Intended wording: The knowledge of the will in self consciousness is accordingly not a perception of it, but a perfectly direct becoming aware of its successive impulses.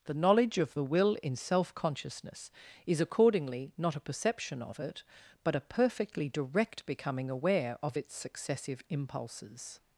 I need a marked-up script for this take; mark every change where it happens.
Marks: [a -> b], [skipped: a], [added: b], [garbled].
The knowledge of the will in self consciousness is accordingly not a perception of it, but a perfectly direct becoming aware of its successive impulses.